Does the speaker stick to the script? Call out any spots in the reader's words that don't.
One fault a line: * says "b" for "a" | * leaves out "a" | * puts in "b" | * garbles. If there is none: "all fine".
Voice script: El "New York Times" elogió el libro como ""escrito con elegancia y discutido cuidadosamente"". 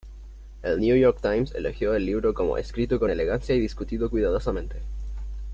all fine